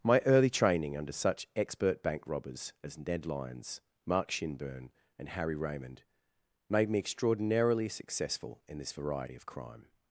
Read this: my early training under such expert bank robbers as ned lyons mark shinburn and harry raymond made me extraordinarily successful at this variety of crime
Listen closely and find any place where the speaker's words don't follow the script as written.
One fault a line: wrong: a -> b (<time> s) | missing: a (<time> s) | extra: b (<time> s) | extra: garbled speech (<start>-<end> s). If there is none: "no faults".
wrong: at -> in (8.7 s)